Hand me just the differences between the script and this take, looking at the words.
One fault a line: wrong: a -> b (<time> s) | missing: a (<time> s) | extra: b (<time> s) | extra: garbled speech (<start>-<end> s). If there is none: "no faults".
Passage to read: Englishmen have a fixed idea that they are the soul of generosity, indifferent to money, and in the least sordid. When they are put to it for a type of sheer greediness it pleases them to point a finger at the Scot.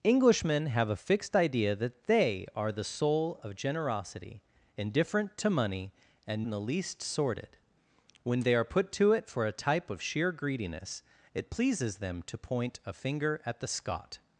no faults